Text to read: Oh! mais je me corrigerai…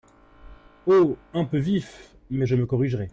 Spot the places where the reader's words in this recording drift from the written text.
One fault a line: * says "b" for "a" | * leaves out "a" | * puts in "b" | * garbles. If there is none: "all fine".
* puts in "un peu vif"